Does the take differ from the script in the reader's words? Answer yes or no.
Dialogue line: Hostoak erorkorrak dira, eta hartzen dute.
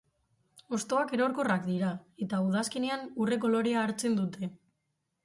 yes